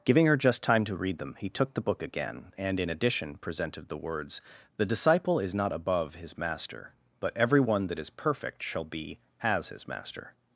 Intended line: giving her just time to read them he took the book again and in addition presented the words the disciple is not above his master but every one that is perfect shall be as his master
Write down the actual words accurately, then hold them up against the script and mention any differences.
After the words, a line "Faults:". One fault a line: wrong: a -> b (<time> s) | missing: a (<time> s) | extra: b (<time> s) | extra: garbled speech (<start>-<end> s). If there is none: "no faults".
giving her just time to read them he took the book again and in addition presented the words the disciple is not above his master but every one that is perfect shall be as his master
Faults:
no faults